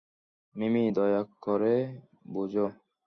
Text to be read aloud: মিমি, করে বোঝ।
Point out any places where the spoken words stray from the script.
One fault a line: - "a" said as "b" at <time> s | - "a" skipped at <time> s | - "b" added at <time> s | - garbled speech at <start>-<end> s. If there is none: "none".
- "দয়া" added at 0.9 s